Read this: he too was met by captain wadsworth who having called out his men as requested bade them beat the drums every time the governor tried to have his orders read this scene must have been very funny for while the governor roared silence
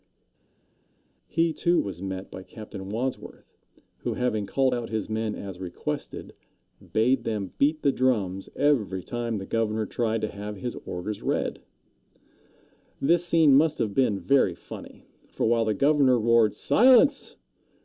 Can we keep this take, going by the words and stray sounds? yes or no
yes